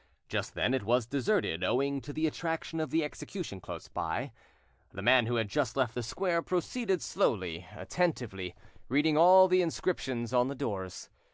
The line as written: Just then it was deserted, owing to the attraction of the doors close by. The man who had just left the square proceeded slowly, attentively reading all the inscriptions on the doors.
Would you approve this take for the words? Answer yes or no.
no